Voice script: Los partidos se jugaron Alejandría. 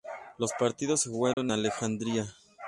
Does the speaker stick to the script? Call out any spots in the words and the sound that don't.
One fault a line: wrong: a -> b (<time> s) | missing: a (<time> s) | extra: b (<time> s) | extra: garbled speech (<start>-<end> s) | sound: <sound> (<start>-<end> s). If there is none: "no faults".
sound: dropout (1.3-1.4 s)